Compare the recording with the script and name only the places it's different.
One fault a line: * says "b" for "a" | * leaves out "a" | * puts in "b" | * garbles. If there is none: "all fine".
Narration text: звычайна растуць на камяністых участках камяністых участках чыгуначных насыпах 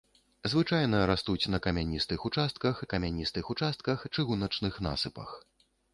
all fine